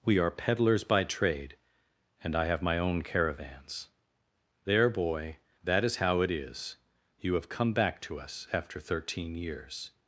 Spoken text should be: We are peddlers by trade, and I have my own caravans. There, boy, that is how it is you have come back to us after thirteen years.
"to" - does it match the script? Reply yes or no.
yes